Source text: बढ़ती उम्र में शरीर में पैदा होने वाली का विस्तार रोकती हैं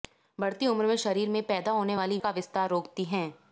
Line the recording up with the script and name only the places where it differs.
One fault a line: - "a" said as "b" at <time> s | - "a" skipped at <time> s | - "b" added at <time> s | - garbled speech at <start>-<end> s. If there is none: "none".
none